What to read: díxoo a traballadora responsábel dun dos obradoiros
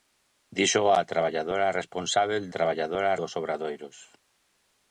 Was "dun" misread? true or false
true